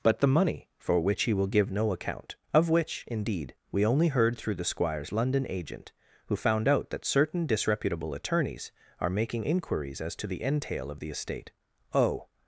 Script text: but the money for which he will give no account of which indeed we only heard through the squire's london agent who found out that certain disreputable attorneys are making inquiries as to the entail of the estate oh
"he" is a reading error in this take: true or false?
false